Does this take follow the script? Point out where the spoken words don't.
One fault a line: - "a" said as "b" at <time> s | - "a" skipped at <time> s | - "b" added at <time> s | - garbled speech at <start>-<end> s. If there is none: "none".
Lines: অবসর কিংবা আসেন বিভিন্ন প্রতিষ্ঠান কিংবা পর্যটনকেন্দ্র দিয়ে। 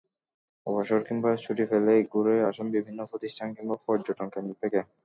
- "ছুটি পেলেই ঘুরে" added at 1.4 s
- "দিয়ে" said as "থেকে" at 4.6 s